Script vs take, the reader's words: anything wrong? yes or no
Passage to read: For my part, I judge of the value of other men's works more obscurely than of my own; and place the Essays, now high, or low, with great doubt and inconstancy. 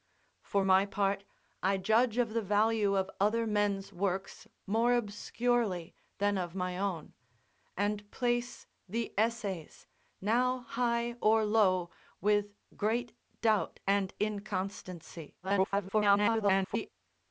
yes